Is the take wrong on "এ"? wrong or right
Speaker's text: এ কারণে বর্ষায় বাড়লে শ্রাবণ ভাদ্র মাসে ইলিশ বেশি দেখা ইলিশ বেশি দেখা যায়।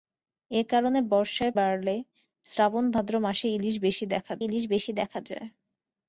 right